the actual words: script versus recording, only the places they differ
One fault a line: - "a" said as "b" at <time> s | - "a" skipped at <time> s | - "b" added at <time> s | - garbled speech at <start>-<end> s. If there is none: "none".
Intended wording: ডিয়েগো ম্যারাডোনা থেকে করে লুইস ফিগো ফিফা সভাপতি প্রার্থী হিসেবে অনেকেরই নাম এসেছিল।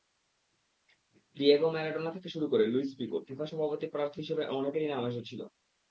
- "শুরু" added at 2.3 s